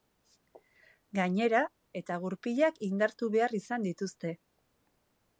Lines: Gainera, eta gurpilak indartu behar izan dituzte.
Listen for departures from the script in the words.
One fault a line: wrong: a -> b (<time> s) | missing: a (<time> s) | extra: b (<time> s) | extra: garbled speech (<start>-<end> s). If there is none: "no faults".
no faults